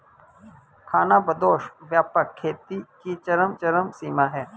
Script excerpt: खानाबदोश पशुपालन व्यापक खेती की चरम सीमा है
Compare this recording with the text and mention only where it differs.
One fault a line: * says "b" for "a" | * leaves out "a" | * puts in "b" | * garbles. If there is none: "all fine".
* leaves out "पशुपालन"
* puts in "चरम"